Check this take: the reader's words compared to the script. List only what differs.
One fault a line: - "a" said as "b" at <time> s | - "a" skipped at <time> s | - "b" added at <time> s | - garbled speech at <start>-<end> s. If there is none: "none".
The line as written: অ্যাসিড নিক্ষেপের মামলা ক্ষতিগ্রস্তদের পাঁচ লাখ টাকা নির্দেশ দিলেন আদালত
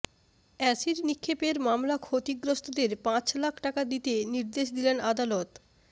- "দিতে" added at 3.9 s